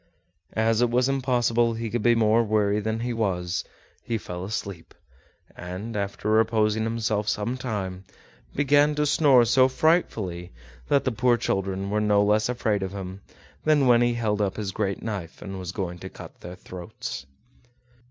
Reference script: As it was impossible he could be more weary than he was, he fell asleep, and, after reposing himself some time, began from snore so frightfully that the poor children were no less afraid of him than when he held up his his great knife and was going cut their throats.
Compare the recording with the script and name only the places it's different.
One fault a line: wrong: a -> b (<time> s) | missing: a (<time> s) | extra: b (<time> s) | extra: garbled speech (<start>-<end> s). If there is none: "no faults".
wrong: from -> to (8.9 s)
missing: his (14.7 s)
extra: to (16.0 s)